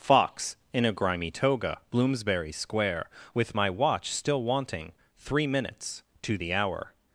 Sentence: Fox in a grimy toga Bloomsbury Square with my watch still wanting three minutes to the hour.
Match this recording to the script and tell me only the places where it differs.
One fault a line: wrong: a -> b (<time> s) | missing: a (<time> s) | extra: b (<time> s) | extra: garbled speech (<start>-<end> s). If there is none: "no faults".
no faults